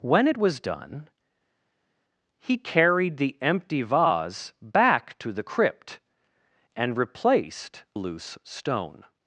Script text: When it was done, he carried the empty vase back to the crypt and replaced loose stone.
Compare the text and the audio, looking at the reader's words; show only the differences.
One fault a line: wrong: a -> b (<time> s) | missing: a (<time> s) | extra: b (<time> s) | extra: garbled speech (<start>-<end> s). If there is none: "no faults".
no faults